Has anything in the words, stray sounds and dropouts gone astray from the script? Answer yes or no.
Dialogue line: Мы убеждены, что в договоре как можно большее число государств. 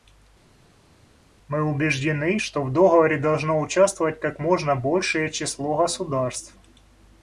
yes